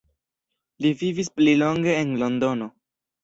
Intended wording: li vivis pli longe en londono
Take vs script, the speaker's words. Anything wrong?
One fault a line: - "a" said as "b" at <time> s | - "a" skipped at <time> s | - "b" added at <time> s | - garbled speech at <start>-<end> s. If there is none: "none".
none